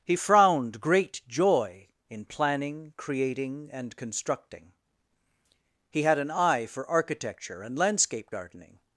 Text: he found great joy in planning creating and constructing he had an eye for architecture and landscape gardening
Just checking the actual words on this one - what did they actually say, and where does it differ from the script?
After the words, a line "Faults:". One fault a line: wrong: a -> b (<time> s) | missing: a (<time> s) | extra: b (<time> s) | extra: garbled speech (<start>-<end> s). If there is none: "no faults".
he frowned great joy in planning creating and constructing he had an eye for architecture and landscape gardening
Faults:
wrong: found -> frowned (0.1 s)